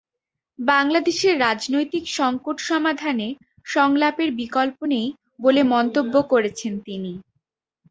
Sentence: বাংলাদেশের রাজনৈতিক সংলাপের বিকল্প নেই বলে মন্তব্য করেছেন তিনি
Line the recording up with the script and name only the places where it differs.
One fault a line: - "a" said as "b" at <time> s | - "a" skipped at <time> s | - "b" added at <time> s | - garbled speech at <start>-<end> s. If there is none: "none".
- "সংকট সমাধানে" added at 2.1 s